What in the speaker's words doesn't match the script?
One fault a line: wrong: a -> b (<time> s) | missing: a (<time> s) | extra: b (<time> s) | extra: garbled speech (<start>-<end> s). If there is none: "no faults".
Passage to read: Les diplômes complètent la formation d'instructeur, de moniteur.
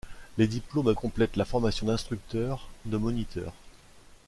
no faults